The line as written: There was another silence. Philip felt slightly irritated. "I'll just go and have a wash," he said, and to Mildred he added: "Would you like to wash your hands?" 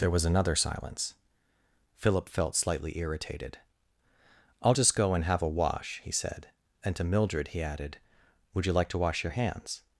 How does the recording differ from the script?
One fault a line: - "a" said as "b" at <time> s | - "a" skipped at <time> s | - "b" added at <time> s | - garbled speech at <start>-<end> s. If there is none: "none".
none